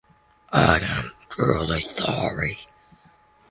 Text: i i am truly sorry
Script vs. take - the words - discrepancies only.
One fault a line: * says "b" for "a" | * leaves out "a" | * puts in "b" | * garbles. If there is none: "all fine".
* leaves out "i"